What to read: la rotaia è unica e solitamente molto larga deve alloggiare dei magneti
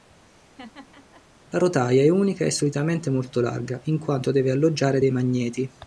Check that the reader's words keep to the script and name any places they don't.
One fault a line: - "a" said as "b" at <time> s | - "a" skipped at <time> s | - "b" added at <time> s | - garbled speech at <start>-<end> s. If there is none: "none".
- "in quanto" added at 3.8 s